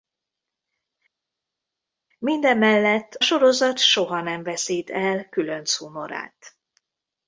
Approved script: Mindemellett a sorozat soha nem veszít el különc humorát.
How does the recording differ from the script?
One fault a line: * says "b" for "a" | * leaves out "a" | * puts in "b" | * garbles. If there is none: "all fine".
* leaves out "a"